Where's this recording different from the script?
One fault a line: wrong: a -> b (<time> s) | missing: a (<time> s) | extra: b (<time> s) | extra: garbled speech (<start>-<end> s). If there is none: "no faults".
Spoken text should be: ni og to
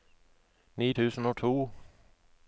extra: tusen (0.9 s)